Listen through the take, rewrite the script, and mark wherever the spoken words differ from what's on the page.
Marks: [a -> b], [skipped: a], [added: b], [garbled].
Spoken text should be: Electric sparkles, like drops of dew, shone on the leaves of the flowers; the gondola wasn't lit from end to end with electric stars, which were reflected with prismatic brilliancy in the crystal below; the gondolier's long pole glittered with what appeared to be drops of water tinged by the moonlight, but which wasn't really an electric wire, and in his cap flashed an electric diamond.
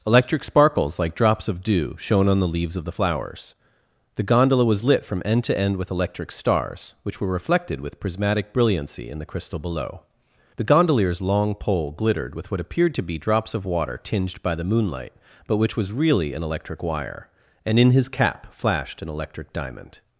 Electric sparkles, like drops of dew, shone on the leaves of the flowers; the gondola [wasn't -> was] lit from end to end with electric stars, which were reflected with prismatic brilliancy in the crystal below; the gondolier's long pole glittered with what appeared to be drops of water tinged by the moonlight, but which [wasn't -> was] really an electric wire, and in his cap flashed an electric diamond.